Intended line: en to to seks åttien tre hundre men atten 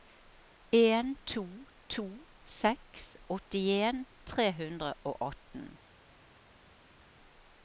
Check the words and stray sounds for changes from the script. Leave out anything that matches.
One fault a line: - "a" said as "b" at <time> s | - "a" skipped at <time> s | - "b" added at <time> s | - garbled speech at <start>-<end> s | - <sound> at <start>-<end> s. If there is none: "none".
- "men" said as "og" at 5.0 s